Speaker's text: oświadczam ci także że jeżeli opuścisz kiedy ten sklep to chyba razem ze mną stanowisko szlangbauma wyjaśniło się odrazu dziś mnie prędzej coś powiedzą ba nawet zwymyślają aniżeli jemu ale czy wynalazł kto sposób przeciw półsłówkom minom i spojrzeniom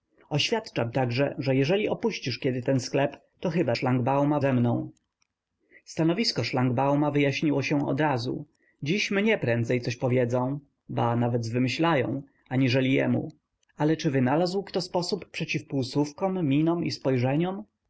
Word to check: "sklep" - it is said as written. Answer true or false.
true